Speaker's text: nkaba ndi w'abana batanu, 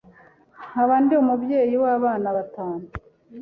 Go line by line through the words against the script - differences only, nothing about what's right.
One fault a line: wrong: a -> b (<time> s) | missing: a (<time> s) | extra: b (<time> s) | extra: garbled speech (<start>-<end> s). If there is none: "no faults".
extra: umubyeyi (1.2 s)